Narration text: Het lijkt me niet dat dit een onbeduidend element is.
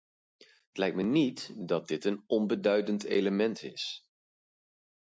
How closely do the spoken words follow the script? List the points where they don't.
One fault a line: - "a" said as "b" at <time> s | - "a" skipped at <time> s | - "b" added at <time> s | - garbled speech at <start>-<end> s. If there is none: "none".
none